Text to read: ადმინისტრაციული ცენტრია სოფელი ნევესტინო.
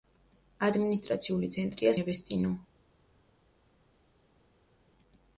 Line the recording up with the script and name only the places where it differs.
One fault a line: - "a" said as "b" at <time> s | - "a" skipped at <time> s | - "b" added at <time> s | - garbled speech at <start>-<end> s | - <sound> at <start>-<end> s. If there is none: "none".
- "სოფელი" skipped at 1.9 s